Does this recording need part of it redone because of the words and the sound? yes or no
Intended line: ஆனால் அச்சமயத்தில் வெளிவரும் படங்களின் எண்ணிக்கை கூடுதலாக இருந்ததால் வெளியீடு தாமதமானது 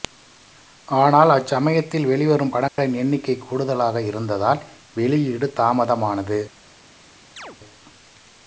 yes